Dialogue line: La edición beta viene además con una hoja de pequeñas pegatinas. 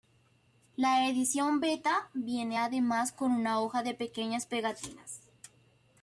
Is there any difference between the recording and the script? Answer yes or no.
no